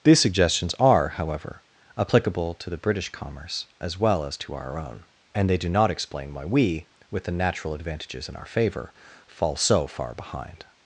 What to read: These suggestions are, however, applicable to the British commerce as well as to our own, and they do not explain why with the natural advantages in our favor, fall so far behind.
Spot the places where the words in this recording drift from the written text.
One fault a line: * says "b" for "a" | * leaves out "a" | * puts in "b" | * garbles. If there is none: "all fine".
* puts in "we"